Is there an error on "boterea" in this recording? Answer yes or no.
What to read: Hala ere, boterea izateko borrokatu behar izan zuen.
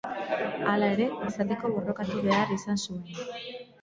yes